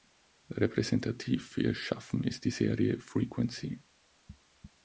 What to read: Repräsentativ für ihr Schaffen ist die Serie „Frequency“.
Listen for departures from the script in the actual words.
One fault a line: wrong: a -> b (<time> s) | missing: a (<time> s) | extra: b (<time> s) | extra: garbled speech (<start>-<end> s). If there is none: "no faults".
no faults